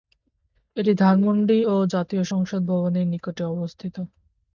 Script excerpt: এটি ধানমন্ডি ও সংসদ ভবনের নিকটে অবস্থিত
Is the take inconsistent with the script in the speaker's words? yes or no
yes